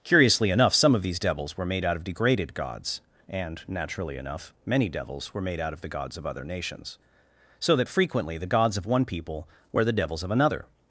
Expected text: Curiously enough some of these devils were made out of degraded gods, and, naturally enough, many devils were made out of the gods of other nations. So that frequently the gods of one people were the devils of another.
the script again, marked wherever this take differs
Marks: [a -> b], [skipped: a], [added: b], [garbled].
Curiously enough some of these devils were made out of degraded gods, and, naturally enough, many devils were made out of the gods of other nations. So that frequently the gods of one people were the devils of another.